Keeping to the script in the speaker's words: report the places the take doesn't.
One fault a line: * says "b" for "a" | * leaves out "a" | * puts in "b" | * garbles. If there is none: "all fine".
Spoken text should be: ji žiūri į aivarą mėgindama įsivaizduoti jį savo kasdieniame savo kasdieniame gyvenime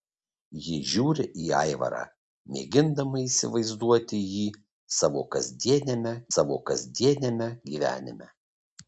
all fine